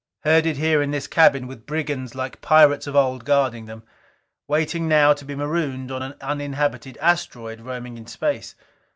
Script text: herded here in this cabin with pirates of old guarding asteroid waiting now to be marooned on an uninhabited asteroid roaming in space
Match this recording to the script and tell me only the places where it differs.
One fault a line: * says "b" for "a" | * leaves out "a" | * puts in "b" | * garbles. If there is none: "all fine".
* puts in "brigands like"
* says "them" for "asteroid"